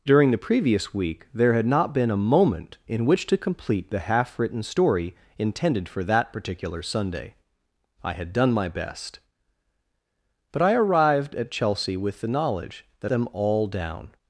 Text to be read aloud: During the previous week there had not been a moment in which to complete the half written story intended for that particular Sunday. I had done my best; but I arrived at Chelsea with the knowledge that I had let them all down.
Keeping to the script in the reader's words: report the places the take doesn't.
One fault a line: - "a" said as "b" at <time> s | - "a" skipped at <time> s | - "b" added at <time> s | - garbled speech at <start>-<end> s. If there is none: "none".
- "I had let" skipped at 13.1 s